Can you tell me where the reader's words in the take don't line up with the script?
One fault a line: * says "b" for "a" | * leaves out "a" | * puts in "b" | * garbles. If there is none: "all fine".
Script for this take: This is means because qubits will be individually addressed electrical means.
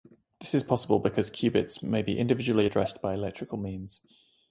* says "possible" for "means"
* says "may" for "will"
* puts in "by"